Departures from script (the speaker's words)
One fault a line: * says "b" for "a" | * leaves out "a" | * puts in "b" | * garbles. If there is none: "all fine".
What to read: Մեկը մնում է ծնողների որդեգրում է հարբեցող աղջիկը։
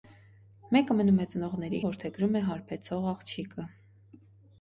all fine